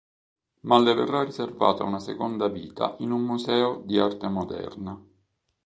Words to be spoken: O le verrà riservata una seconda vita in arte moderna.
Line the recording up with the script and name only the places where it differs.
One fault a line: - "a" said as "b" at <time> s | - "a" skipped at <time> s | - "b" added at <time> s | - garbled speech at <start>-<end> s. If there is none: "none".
- "O" said as "Ma" at 0.6 s
- "un museo di" added at 3.1 s